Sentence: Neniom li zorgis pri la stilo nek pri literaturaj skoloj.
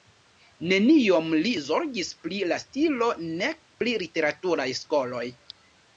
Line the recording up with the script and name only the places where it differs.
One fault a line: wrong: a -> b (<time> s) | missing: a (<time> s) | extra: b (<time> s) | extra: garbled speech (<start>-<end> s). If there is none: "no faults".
no faults